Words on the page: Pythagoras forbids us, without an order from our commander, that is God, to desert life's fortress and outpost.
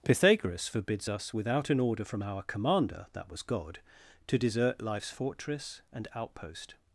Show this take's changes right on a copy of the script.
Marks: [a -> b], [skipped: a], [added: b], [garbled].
Pythagoras forbids us, without an order from our commander, that [is -> was] God, to desert life's fortress and outpost.